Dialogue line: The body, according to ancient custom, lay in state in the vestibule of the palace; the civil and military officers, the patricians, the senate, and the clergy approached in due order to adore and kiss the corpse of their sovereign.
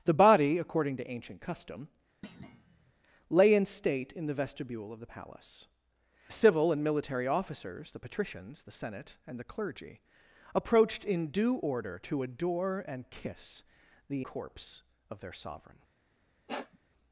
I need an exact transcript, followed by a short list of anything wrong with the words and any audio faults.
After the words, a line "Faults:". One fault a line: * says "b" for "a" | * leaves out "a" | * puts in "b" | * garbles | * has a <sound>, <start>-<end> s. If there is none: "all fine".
The body, according to ancient custom, lay in state in the vestibule of the palace; the civil and military officers, the patricians, the senate, and the clergy approached in due order to adore and kiss the corpse of their sovereign.
Faults:
* has a thud, 2.2-2.9 s
* has a sniff, 16.5-16.8 s